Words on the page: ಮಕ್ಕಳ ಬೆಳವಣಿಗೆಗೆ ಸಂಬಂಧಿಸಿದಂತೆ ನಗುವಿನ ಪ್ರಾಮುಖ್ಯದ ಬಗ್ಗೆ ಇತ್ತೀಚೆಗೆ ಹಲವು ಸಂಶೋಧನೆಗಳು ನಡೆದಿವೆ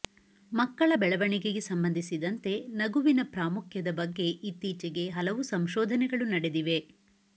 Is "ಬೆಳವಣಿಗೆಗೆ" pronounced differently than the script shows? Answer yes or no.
no